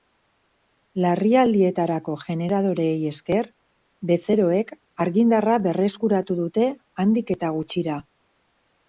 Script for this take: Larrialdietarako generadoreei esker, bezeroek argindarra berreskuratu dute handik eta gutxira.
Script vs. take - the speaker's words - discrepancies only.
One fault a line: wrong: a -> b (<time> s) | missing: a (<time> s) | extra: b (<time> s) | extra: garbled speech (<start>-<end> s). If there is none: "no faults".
no faults